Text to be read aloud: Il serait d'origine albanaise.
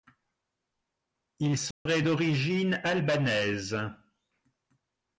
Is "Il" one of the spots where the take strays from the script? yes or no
no